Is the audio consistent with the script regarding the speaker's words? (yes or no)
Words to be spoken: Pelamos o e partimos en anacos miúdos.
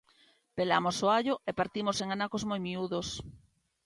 no